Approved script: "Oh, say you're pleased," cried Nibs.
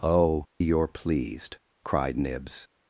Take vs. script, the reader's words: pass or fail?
fail